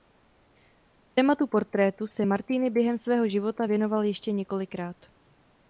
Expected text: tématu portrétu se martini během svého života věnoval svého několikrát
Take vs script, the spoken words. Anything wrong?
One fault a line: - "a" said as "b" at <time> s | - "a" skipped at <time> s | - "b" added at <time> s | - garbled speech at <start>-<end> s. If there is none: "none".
- "svého" said as "ještě" at 4.0 s